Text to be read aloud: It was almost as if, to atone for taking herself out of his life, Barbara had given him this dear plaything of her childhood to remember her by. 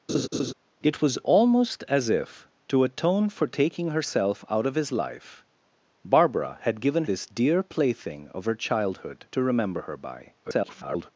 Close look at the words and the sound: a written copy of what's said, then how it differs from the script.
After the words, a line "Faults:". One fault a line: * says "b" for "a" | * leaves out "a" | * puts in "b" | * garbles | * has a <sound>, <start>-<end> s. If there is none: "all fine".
It was almost as if, to atone for taking herself out of his life, Barbara had given this dear plaything of her childhood to remember her by. [garbled]
Faults:
* has a laugh, 0.1-0.5 s
* leaves out "him"
* garbles